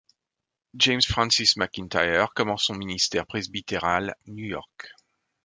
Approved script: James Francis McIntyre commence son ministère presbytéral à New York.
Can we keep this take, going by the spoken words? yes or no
no